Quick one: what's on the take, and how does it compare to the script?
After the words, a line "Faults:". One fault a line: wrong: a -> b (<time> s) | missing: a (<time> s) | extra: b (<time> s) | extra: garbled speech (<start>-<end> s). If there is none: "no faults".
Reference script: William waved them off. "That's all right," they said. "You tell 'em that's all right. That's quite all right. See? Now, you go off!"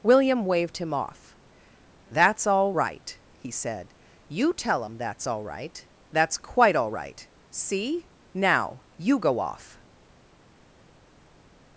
William waved him off. "That's all right," he said. "You tell 'em that's all right. That's quite all right. See? Now, you go off!"
Faults:
wrong: them -> him (0.8 s)
wrong: they -> he (3.3 s)